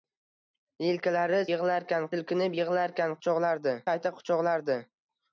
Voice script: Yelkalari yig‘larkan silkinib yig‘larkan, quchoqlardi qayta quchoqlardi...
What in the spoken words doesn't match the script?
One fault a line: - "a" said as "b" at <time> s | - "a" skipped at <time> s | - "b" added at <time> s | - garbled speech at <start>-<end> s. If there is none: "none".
none